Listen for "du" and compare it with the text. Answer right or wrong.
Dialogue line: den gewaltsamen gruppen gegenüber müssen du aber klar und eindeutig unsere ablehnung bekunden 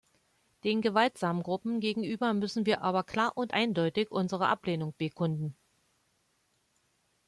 wrong